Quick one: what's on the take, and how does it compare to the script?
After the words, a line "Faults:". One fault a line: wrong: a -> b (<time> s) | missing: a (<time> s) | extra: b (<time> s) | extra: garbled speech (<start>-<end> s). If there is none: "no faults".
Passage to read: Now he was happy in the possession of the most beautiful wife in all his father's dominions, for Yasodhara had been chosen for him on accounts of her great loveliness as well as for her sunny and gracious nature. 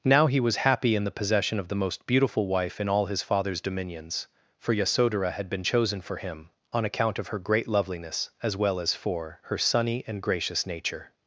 Now he was happy in the possession of the most beautiful wife in all his father's dominions, for Yasodhara had been chosen for him on account of her great loveliness as well as for her sunny and gracious nature.
Faults:
wrong: accounts -> account (6.9 s)